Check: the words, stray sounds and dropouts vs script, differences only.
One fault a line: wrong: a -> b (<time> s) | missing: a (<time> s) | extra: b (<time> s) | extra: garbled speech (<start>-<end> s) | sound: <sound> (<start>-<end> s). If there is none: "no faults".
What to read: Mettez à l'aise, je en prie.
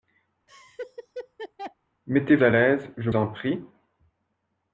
sound: laugh (0.5-1.8 s)